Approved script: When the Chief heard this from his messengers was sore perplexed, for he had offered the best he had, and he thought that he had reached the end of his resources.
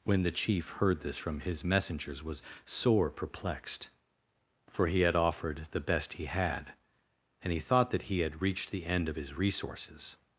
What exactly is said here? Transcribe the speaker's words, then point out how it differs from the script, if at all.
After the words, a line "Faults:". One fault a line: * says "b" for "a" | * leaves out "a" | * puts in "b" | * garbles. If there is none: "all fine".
When the Chief heard this from his messengers was sore perplexed, for he had offered the best he had, and he thought that he had reached the end of his resources.
Faults:
all fine